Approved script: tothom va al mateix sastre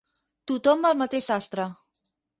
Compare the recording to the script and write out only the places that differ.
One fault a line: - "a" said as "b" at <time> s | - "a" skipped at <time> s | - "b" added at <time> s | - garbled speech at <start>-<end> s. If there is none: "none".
none